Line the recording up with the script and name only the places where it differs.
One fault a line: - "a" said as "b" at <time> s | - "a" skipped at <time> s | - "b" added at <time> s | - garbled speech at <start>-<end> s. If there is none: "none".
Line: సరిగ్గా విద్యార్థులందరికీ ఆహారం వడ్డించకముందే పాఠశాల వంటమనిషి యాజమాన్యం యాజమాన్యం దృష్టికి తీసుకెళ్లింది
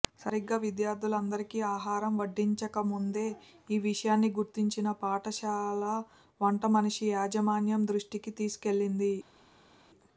- "ఈ విషయాన్ని గుర్తించిన" added at 3.7 s
- "యాజమాన్యం" skipped at 7.8 s